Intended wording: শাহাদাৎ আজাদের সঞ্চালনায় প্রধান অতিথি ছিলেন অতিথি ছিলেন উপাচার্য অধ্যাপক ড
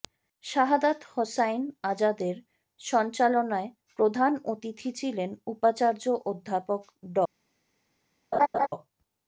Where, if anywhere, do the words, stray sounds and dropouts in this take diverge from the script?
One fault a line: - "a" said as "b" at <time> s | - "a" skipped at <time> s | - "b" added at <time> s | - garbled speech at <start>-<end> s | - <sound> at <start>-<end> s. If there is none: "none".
- "হোসাইন" added at 1.1 s
- "অতিথি ছিলেন" skipped at 5.3 s
- laugh at 8.3-8.7 s